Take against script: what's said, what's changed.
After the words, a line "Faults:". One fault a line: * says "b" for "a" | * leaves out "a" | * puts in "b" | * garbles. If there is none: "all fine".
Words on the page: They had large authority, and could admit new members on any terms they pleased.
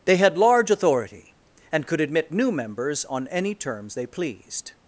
They had large authority, and could admit new members on any terms they pleased.
Faults:
all fine